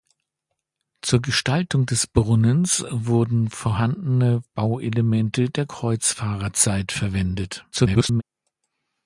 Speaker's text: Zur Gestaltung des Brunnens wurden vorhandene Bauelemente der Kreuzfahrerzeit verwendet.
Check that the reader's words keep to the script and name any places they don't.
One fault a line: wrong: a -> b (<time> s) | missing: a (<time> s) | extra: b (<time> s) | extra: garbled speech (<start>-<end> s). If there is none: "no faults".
extra: garbled speech (7.7-8.2 s)